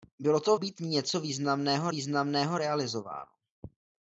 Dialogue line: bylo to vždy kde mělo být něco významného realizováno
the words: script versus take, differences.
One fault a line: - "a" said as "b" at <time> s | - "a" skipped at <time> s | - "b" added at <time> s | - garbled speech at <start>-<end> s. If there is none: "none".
- "vždy kde mělo" skipped at 0.6 s
- "významného" added at 1.9 s